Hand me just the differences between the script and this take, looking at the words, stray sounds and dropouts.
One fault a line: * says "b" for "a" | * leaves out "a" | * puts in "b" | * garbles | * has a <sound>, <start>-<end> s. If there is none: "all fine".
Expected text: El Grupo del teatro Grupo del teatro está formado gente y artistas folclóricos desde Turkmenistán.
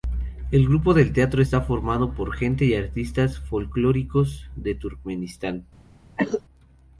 * leaves out "Grupo del teatro"
* puts in "por"
* says "de" for "desde"
* has a cough, 6.2-6.4 s